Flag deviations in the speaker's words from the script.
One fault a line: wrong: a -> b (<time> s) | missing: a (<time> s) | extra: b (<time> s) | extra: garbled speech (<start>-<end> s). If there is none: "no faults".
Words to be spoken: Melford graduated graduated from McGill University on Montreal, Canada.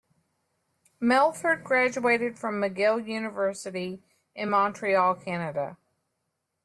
missing: graduated (2.4 s)
wrong: on -> in (4.3 s)